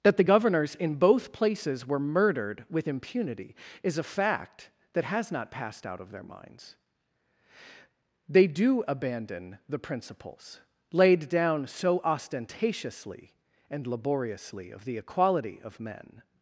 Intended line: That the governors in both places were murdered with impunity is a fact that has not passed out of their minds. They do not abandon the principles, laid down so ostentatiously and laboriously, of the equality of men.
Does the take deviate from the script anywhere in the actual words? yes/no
yes